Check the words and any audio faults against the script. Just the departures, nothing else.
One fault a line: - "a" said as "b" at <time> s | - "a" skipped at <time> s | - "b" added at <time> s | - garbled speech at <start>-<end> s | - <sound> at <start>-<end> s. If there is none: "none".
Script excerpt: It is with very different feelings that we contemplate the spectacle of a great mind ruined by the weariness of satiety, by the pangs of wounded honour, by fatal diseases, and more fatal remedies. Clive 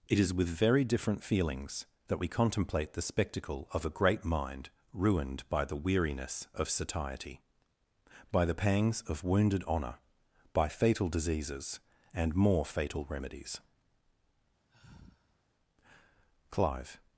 - sigh at 14.7-15.4 s